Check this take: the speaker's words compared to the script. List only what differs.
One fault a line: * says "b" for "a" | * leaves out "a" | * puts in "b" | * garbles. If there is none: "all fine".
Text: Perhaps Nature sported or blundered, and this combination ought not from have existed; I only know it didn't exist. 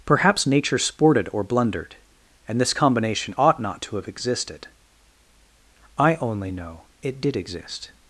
* says "to" for "from"
* says "did" for "didn't"